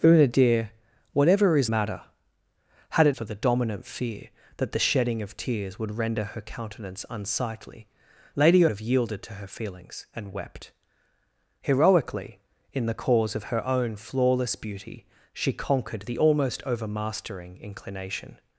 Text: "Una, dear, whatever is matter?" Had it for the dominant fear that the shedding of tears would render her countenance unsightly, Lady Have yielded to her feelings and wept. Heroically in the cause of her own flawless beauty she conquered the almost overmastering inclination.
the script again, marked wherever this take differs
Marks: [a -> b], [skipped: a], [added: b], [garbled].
"Una, dear, whatever is matter?" Had it for the dominant fear that the shedding of tears would render her countenance unsightly, Lady Have yielded to her feelings and wept. Heroically in the cause of her own flawless beauty she conquered the almost overmastering inclination.